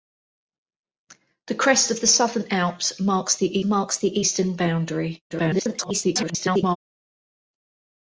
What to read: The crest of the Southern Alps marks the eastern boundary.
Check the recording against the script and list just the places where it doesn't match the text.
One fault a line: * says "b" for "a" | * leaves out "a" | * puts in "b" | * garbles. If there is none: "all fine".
* puts in "marks the"
* garbles